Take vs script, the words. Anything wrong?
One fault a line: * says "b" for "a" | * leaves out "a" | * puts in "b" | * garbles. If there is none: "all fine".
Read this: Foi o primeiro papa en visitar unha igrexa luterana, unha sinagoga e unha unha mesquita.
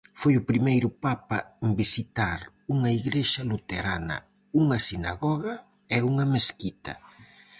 * leaves out "unha"